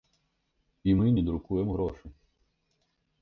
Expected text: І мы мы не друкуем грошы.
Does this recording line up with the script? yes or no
no